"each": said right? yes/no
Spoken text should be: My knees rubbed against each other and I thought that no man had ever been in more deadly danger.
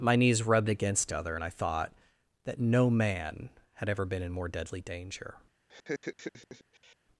no